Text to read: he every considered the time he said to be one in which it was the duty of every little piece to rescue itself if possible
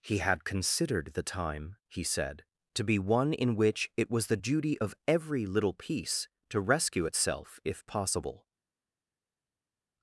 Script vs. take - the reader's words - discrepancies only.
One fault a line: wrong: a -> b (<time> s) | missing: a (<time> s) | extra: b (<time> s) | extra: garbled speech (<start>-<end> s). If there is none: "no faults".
wrong: every -> had (0.2 s)